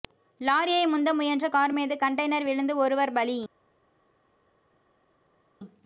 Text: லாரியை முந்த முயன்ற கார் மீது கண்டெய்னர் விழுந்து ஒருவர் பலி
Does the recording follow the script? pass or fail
pass